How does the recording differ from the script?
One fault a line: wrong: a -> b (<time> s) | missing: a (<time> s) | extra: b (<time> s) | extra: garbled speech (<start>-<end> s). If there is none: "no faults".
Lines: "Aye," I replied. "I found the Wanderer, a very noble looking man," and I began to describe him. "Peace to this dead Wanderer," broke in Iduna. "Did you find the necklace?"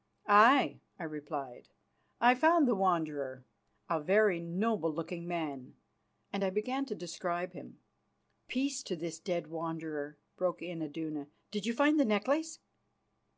no faults